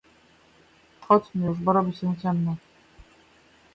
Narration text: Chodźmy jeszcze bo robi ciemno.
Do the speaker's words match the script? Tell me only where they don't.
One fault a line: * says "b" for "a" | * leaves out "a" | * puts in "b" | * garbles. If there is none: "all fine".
* says "już" for "jeszcze"
* puts in "się"